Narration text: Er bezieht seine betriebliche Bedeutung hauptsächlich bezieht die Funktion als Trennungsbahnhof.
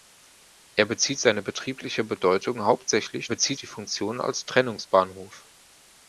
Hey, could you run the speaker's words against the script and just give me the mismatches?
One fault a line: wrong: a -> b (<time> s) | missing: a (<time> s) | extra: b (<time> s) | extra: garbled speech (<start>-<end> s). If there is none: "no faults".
no faults